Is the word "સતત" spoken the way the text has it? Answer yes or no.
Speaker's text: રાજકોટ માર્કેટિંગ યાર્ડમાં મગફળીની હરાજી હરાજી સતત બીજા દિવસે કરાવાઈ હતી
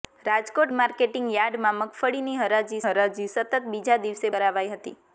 yes